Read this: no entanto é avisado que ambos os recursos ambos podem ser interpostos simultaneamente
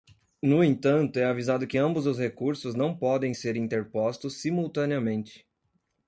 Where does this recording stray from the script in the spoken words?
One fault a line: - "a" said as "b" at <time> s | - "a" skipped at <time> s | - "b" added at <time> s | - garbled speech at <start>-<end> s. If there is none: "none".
- "ambos" said as "não" at 2.7 s